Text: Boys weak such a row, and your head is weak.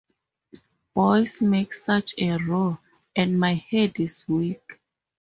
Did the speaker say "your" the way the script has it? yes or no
no